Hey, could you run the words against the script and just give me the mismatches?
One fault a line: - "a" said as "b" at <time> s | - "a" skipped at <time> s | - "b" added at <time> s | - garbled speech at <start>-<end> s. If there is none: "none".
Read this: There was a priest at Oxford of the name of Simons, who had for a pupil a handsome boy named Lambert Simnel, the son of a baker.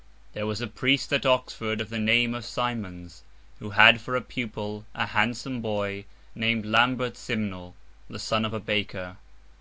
none